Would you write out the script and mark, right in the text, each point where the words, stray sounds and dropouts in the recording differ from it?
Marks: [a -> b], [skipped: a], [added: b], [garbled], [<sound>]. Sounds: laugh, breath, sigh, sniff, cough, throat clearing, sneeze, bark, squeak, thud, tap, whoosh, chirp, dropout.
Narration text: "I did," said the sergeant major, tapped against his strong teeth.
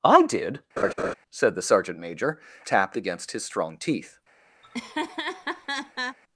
"I did," [laugh] said the sergeant major, tapped against his strong teeth. [laugh]